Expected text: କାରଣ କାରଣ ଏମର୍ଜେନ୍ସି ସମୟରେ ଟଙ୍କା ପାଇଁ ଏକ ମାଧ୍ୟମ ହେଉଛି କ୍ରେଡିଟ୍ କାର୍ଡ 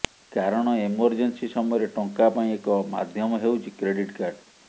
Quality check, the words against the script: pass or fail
fail